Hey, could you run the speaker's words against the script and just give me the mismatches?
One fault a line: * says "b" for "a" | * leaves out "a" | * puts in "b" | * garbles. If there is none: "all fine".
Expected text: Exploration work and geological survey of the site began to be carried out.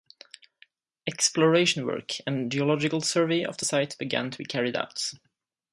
all fine